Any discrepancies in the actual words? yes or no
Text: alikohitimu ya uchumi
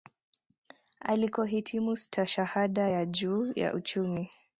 yes